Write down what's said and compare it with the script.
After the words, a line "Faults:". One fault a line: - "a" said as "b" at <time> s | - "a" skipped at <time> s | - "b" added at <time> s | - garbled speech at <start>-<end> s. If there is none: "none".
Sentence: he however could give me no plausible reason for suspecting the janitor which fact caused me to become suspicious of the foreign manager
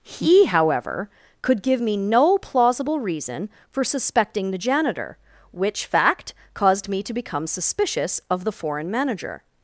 he however could give me no plausible reason for suspecting the janitor which fact caused me to become suspicious of the foreign manager
Faults:
none